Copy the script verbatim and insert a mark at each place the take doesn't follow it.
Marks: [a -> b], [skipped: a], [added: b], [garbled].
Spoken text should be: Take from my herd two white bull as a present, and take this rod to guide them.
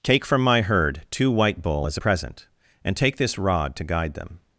Take from my herd two white bull as a present, and take this rod to guide them.